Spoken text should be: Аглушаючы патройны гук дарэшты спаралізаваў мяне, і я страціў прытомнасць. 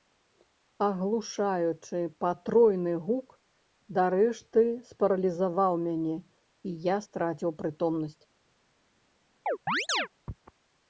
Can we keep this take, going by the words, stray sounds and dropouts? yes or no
no